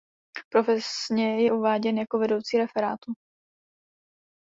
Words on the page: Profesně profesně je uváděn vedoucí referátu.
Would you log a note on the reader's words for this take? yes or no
yes